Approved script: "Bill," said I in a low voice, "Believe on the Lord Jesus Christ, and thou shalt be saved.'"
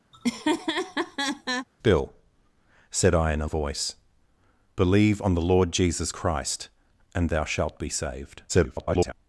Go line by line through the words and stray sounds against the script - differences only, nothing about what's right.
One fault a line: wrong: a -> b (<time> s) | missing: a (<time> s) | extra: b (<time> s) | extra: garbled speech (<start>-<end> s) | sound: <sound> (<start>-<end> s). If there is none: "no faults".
sound: laugh (0.1-1.7 s)
missing: low (3.5 s)
extra: garbled speech (8.5-9.1 s)